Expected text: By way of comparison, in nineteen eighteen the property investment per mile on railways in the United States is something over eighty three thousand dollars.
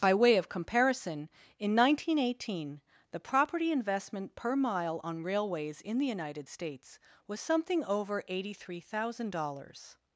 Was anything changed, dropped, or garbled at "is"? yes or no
yes